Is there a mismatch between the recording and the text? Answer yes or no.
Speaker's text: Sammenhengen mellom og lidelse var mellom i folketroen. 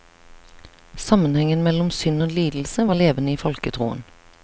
yes